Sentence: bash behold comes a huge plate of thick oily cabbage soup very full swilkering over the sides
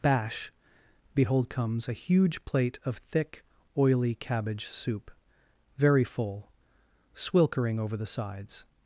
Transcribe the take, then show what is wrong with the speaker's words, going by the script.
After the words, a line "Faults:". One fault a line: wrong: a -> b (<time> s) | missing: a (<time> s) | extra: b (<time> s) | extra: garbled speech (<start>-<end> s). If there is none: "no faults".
bash behold comes a huge plate of thick oily cabbage soup very full swilkering over the sides
Faults:
no faults